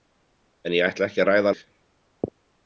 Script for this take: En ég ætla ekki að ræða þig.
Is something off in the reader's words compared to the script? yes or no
no